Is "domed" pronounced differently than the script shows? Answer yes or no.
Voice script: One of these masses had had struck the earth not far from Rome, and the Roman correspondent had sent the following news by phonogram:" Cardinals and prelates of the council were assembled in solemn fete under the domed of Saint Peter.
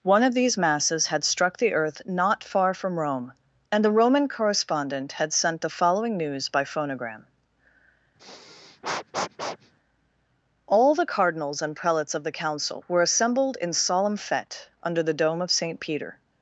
yes